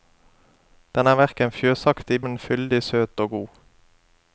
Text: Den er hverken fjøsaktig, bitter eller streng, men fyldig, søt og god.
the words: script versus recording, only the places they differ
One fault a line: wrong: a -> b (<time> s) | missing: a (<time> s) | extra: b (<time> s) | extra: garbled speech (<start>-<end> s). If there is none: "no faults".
missing: bitter eller streng (2.2 s)